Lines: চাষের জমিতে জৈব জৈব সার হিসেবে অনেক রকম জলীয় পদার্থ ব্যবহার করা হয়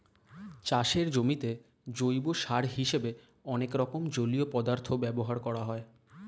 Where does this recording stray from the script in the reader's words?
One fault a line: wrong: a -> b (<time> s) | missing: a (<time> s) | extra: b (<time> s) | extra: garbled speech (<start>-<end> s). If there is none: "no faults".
missing: জৈব (2.2 s)